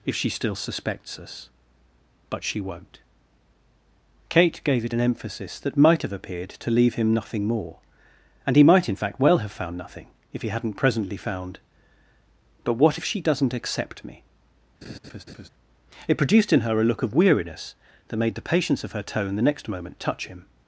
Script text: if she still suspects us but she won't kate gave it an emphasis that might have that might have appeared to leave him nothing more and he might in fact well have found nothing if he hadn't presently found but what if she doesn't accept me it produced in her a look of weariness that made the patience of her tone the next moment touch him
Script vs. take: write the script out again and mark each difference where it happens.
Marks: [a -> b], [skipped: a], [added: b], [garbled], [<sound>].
if she still suspects us but she won't kate gave it an emphasis that might have [skipped: that might have] appeared to leave him nothing more and he might in fact well have found nothing if he hadn't presently found but what if she doesn't accept me [laugh] it produced in her a look of weariness that made the patience of her tone the next moment touch him